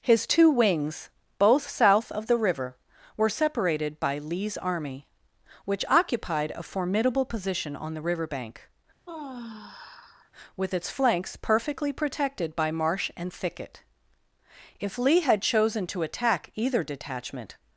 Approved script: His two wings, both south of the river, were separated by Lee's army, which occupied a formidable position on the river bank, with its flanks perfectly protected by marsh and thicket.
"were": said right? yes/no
yes